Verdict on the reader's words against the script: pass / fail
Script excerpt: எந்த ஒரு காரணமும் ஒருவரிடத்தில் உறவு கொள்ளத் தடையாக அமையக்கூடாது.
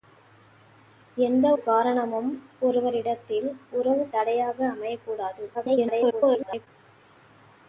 fail